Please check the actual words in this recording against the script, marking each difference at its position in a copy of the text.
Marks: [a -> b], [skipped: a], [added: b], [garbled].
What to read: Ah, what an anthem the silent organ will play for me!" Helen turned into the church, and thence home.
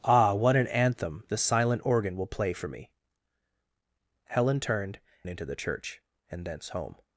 Ah, what an anthem the silent organ will play for me!" Helen turned into the church, and thence home.